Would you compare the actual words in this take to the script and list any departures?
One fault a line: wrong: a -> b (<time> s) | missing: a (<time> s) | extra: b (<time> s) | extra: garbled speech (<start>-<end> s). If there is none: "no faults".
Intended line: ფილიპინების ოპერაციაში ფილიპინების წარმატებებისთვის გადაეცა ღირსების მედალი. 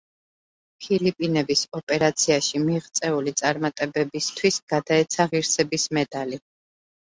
wrong: ფილიპინების -> მიღწეული (2.6 s)